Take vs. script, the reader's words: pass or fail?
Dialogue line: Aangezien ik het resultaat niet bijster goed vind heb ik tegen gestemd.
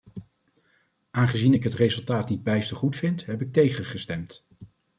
pass